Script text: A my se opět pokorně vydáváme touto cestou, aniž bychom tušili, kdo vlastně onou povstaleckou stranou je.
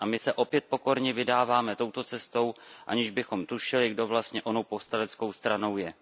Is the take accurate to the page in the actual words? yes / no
yes